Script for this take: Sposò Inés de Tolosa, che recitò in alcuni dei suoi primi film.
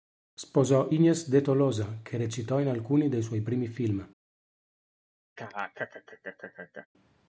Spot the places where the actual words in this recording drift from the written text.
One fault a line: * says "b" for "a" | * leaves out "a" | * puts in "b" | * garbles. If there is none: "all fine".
all fine